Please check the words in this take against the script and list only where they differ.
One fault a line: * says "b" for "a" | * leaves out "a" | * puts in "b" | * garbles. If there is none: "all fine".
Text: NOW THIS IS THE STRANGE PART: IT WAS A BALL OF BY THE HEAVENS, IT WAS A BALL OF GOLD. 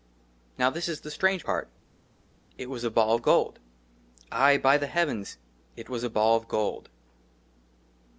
* puts in "GOLD AYE"